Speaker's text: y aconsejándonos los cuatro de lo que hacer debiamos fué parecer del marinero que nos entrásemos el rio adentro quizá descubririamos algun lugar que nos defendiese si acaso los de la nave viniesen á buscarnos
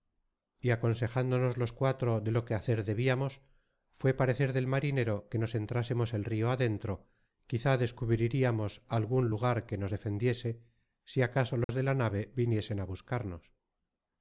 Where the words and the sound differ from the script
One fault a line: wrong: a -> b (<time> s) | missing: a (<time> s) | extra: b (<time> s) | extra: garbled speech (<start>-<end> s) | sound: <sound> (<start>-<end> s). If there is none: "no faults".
sound: dropout (11.6-11.7 s)